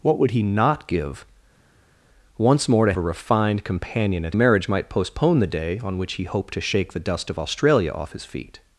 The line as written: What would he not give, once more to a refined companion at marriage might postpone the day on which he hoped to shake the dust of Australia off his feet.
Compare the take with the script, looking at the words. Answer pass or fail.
pass